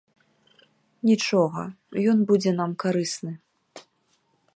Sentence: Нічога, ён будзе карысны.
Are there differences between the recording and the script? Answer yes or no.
yes